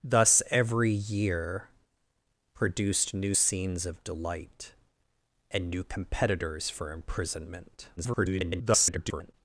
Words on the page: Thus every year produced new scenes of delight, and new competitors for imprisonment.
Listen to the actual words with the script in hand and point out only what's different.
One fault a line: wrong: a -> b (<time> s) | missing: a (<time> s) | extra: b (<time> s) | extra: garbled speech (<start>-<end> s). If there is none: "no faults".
extra: garbled speech (8.0-9.3 s)